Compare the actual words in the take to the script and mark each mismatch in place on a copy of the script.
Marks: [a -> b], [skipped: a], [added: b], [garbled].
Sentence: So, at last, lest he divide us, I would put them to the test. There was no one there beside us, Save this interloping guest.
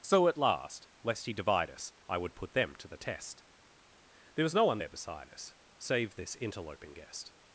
So, at last, lest he divide us, I would put them to the test. There was no one there beside us, Save this interloping guest.